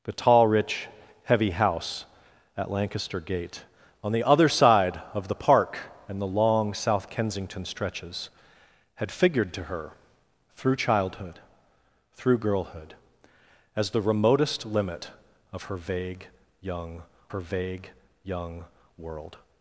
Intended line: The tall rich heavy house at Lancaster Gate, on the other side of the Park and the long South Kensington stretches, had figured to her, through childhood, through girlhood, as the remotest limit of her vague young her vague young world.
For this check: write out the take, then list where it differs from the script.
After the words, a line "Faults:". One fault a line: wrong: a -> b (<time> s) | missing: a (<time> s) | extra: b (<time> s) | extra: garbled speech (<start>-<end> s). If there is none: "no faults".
The tall rich heavy house at Lancaster Gate, on the other side of the Park and the long South Kensington stretches, had figured to her, through childhood, through girlhood, as the remotest limit of her vague young her vague young world.
Faults:
no faults